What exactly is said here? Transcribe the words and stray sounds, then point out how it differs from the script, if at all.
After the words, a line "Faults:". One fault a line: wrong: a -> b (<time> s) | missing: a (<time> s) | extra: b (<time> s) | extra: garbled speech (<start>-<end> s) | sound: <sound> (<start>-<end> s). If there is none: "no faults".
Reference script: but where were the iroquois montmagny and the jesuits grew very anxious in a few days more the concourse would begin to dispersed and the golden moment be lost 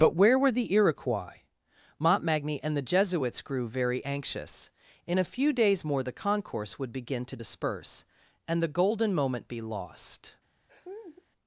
but where were the iroquois montmagny and the jesuits grew very anxious in a few days more the concourse would begin to disperse and the golden moment be lost
Faults:
wrong: dispersed -> disperse (7.4 s)
sound: laugh (10.7-11.3 s)